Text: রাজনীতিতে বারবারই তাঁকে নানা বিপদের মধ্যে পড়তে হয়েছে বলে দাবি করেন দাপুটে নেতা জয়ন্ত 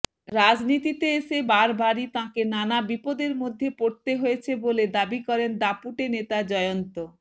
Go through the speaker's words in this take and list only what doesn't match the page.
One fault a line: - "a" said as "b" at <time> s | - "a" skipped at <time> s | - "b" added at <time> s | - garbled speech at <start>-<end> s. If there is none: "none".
- "এসে" added at 1.2 s